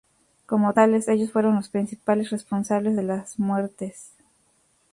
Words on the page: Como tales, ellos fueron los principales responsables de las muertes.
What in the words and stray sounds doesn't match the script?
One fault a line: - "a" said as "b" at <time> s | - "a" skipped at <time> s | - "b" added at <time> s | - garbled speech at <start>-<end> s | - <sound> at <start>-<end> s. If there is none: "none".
none